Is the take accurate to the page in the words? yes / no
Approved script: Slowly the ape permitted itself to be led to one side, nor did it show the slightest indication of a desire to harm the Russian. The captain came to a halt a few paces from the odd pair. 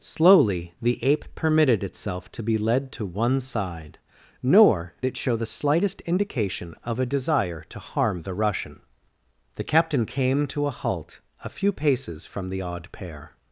no